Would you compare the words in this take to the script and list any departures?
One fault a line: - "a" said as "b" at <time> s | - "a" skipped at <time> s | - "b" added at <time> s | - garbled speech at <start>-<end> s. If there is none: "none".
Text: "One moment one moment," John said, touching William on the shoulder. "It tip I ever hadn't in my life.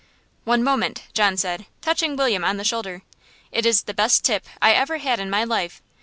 - "one moment" skipped at 1.0 s
- "is the best" added at 3.7 s
- "hadn't" said as "had" at 5.0 s